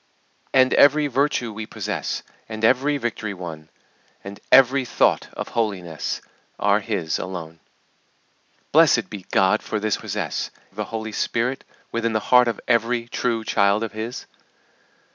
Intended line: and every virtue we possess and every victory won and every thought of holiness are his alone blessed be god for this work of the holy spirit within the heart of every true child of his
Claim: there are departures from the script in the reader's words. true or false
true